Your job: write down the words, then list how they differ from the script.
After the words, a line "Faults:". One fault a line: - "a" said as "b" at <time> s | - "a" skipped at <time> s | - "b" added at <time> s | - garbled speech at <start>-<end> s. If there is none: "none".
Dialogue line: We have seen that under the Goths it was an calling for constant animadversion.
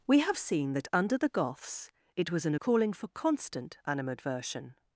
We have seen that under the Goths it was an calling for constant animadversion.
Faults:
none